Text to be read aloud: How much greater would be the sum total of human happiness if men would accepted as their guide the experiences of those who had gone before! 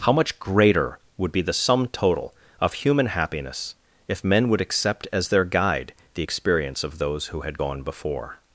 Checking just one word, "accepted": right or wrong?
wrong